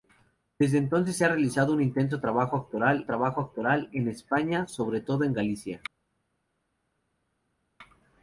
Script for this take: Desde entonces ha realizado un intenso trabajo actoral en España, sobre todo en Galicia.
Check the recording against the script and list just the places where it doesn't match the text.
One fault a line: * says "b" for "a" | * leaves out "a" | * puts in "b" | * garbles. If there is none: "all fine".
* puts in "trabajo actoral"